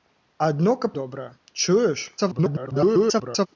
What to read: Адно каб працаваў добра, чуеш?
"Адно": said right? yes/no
yes